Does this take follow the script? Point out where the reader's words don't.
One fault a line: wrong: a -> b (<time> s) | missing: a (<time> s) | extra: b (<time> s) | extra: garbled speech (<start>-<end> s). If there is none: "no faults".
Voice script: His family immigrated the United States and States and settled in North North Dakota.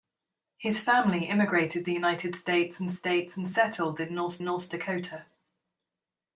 no faults